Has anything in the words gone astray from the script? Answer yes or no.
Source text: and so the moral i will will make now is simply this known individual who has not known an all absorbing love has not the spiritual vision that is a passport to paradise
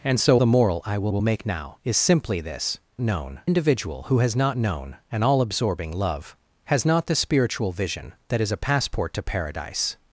no